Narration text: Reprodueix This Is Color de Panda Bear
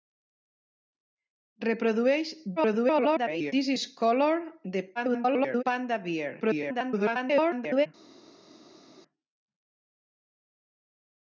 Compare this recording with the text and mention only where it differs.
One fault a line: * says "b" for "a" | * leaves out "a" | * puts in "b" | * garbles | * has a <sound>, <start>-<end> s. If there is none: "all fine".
* garbles
* garbles
* garbles